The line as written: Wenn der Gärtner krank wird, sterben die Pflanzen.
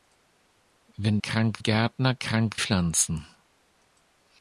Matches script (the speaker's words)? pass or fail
fail